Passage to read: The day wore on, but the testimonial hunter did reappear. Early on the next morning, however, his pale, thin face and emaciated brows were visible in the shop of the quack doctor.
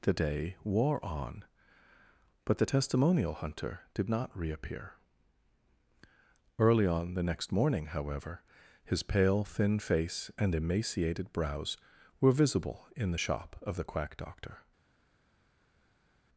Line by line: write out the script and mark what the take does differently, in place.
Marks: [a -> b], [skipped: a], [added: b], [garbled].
The day wore on, but the testimonial hunter did [added: not] reappear. Early on the next morning, however, his pale, thin face and emaciated brows were visible in the shop of the quack doctor.